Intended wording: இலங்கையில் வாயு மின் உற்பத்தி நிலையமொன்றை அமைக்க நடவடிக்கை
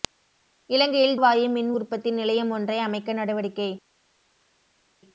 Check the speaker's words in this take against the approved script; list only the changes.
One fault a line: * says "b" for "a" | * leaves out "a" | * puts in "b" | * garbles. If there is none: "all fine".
all fine